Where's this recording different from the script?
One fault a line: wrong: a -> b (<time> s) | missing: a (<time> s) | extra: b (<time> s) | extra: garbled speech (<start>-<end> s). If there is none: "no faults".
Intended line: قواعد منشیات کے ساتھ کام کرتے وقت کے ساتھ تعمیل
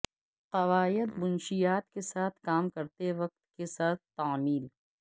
no faults